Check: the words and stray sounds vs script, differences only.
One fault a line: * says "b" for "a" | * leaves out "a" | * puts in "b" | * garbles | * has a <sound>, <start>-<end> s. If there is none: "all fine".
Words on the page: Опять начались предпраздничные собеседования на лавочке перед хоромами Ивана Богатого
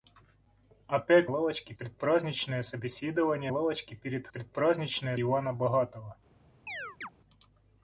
* says "лавочке" for "начались"
* leaves out "на"
* says "предпраздничные" for "хоромами"
* has a chirp, 6.7-7.1 s